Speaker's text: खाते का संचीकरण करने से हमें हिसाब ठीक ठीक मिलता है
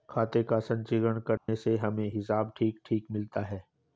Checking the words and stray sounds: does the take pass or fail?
fail